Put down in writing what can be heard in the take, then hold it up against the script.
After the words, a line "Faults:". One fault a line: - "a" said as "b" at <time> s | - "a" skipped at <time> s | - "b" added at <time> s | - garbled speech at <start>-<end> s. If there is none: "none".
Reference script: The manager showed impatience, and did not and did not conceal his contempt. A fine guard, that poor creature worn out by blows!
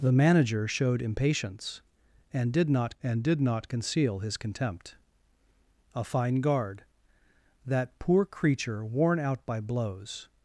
The manager showed impatience, and did not and did not conceal his contempt. A fine guard, that poor creature worn out by blows!
Faults:
none